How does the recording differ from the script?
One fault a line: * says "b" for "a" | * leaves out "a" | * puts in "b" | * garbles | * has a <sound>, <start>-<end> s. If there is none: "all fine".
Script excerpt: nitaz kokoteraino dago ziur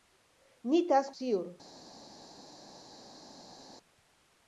* leaves out "kokoteraino dago"